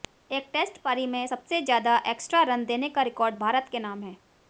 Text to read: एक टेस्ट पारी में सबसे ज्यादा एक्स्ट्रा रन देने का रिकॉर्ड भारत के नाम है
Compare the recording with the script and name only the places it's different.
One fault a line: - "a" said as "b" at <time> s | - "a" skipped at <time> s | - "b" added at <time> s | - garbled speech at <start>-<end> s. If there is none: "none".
none